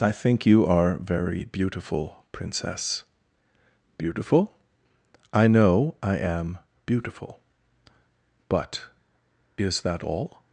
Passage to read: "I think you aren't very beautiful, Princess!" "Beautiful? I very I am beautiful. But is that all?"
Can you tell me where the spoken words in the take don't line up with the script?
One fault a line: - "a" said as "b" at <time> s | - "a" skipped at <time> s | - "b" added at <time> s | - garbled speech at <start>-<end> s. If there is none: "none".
- "aren't" said as "are" at 0.7 s
- "very" said as "know" at 5.5 s